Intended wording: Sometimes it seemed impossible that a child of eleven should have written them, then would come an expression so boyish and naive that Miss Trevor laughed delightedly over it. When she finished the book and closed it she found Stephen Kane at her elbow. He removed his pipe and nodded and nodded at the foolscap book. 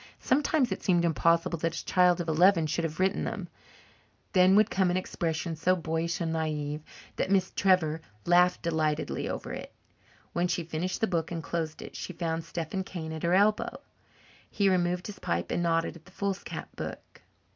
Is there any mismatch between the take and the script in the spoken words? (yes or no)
yes